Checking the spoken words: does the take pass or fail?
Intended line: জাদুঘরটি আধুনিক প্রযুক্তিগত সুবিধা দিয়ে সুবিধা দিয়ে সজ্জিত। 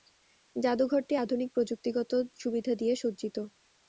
fail